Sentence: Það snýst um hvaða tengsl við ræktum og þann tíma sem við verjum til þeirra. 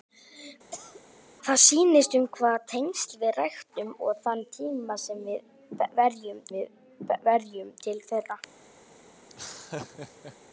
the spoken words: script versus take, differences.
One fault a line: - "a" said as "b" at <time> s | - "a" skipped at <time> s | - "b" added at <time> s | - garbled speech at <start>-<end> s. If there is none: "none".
- "við verjum" added at 6.6 s